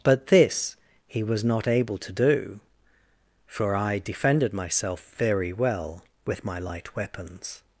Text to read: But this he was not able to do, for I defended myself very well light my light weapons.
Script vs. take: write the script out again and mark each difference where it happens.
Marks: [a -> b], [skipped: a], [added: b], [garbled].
But this he was not able to do, for I defended myself very well [light -> with] my light weapons.